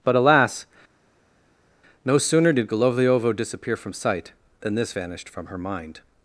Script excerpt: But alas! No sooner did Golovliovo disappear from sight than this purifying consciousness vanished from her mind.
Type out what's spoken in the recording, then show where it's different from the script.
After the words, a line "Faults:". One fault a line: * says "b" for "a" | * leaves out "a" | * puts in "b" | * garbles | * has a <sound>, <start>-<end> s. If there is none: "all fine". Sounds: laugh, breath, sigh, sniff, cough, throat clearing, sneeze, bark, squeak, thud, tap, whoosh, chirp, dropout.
But alas! No sooner did Golovliovo disappear from sight than this vanished from her mind.
Faults:
* leaves out "purifying consciousness"